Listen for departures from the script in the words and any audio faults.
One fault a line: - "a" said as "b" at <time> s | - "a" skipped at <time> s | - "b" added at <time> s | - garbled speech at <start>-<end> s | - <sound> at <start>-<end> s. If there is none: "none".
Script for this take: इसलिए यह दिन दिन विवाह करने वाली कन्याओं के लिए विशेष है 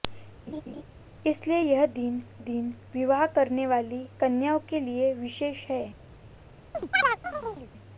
- laugh at 0.5-0.8 s
- chirp at 6.7-7.7 s